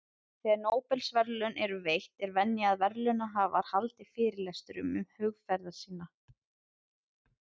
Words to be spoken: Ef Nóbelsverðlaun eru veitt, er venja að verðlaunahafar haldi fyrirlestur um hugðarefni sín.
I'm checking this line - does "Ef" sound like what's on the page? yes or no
no